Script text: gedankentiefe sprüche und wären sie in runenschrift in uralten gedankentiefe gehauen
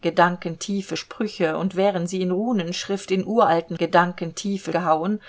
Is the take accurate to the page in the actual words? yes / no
yes